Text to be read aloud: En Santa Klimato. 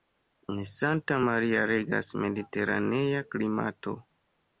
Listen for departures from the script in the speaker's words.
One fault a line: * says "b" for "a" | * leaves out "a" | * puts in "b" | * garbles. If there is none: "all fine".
* puts in "Maria regas mediteranea"